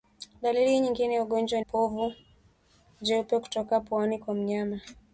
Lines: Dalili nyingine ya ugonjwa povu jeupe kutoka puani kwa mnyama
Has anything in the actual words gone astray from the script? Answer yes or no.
no